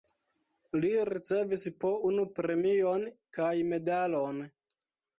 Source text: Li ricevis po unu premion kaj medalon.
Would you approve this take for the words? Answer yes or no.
yes